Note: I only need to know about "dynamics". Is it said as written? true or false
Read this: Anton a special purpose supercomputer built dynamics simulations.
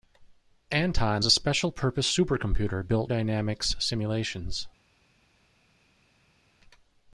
true